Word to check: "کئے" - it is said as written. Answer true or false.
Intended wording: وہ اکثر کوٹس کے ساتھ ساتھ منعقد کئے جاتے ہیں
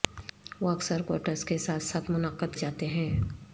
false